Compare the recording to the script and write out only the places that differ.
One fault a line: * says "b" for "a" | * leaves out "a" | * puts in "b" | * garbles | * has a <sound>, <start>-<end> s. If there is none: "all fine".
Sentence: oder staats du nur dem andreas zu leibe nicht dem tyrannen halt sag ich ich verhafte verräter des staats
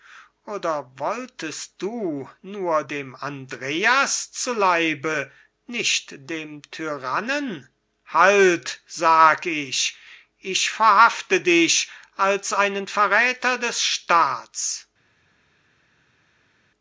* says "wolltest" for "staats"
* puts in "dich als einen"